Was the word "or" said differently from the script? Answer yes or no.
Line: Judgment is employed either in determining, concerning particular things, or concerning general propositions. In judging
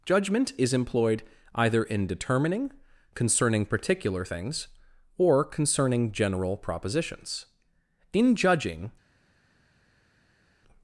no